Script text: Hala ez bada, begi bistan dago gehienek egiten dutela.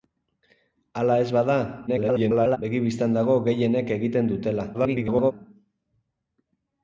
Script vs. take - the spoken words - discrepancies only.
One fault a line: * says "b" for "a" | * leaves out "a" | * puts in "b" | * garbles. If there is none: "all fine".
* garbles
* garbles